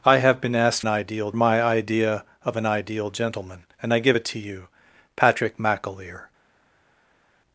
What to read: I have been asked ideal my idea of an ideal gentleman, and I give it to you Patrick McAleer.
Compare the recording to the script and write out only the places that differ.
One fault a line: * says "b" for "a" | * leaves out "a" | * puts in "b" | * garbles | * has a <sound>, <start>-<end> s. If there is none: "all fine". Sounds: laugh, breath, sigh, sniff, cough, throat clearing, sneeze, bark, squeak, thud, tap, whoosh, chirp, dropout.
all fine